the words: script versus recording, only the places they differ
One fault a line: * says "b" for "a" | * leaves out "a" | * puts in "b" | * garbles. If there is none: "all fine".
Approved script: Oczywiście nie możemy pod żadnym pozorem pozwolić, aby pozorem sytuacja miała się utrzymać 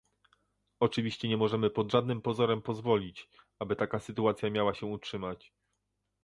* says "taka" for "pozorem"